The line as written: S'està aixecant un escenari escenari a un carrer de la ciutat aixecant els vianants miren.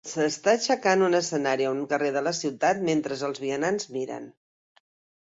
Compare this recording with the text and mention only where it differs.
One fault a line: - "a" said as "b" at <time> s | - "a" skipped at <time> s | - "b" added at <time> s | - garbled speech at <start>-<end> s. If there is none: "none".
- "escenari" skipped at 1.7 s
- "aixecant" said as "mentre" at 2.9 s